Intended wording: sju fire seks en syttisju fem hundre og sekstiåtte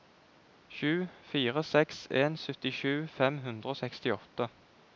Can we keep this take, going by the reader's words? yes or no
yes